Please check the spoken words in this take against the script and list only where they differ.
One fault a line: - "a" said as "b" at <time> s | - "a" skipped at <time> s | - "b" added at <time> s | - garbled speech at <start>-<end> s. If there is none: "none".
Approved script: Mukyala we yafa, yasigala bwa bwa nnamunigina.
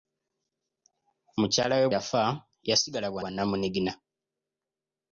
none